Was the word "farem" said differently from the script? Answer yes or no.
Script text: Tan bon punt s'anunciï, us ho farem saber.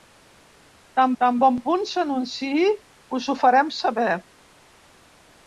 no